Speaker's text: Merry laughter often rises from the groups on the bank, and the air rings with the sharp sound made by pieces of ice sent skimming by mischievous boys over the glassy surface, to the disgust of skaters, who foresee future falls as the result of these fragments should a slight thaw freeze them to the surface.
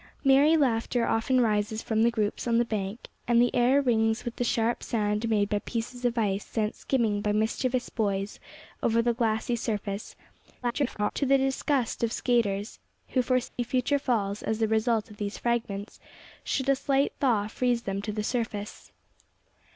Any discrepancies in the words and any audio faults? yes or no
yes